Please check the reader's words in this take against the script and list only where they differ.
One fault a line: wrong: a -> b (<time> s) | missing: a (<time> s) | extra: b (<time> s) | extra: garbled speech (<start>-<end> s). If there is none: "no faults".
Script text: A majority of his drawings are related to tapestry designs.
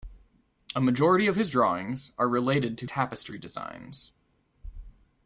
no faults